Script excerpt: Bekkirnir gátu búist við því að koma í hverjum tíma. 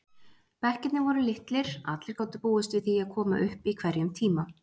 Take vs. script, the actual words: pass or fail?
fail